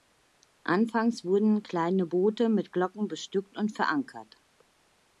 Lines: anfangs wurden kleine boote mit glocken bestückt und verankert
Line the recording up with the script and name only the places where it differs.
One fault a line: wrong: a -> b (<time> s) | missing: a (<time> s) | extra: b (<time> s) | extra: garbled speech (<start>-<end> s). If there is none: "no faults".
no faults